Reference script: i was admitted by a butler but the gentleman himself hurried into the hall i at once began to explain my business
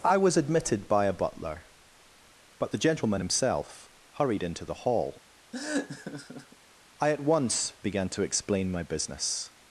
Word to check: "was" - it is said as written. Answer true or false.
true